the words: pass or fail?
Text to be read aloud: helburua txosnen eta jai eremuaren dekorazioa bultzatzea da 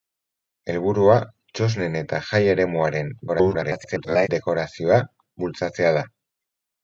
fail